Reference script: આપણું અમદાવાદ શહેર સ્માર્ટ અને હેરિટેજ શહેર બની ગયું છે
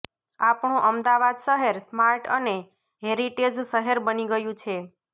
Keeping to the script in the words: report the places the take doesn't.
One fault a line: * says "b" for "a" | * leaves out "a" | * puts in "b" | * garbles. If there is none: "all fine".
all fine